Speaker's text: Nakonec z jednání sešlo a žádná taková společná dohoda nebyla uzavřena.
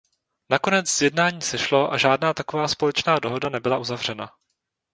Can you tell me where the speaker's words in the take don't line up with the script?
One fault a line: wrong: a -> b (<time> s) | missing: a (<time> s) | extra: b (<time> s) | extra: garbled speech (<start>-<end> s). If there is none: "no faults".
no faults